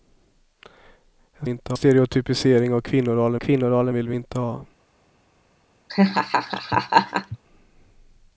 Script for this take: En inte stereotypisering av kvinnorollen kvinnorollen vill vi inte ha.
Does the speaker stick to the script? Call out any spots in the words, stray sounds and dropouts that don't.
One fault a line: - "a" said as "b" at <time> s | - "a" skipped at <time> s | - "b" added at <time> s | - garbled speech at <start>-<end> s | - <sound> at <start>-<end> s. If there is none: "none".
- laugh at 5.9-7.4 s